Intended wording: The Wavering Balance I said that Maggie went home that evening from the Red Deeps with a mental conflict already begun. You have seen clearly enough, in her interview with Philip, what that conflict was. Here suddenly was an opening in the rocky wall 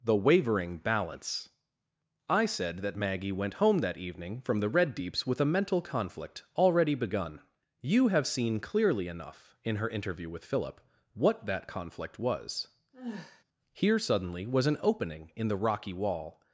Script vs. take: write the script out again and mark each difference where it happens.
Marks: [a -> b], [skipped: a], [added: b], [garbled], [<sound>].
The Wavering Balance I said that Maggie went home that evening from the Red Deeps with a mental conflict already begun. You have seen clearly enough, in her interview with Philip, what that conflict was. [sigh] Here suddenly was an opening in the rocky wall